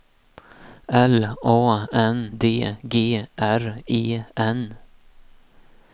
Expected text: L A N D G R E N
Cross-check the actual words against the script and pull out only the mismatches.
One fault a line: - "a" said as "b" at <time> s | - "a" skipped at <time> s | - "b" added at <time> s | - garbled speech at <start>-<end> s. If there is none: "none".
none